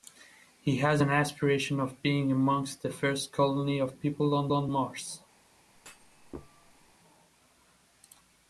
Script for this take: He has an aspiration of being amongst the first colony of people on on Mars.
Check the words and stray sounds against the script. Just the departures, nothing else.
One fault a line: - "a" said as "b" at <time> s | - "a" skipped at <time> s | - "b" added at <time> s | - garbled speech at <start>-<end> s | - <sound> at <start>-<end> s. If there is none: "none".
- thud at 5.7-6.9 s